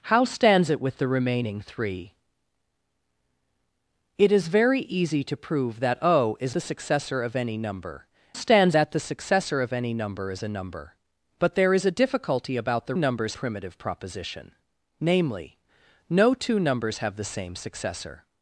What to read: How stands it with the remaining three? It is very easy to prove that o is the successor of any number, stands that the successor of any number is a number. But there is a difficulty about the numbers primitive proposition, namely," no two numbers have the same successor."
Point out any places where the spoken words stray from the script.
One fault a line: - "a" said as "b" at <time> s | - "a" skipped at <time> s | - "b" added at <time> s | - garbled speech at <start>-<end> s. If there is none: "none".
none